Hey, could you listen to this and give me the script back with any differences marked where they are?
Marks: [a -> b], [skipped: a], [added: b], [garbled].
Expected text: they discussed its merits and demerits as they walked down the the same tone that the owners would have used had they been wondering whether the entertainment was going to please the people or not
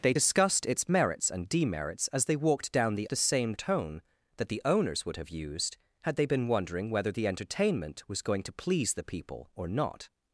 they discussed its merits and demerits as they walked down the the same tone that the owners would have used had they been wondering whether the entertainment was going to please the people or not